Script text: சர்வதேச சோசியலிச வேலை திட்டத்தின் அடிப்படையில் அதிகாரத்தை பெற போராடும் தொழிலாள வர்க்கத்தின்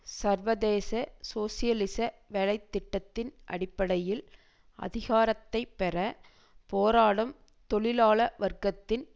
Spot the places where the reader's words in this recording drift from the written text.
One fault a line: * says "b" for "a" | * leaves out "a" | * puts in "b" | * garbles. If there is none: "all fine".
all fine